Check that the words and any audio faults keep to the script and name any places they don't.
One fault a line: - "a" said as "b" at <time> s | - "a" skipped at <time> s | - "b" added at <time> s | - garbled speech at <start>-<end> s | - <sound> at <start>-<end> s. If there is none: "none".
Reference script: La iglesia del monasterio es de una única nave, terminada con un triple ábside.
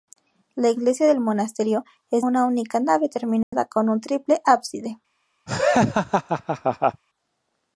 - "de" skipped at 2.2 s
- dropout at 3.4-3.5 s
- laugh at 5.5-7.0 s